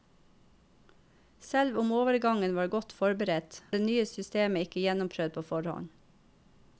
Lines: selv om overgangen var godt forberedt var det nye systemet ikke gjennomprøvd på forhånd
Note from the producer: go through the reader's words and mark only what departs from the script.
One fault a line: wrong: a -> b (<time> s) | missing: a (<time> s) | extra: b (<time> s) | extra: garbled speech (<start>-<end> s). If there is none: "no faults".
missing: var (3.6 s)